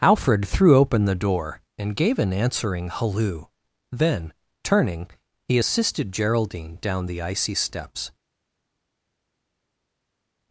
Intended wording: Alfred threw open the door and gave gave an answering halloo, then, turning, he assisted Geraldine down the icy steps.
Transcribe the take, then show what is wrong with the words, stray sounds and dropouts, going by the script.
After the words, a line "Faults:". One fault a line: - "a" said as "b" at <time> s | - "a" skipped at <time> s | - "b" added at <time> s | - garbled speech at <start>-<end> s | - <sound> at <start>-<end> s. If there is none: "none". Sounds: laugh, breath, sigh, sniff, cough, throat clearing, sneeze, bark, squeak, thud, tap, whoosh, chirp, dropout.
Alfred threw open the door and gave an answering halloo, then, turning, he assisted Geraldine down the icy steps.
Faults:
- "gave" skipped at 2.2 s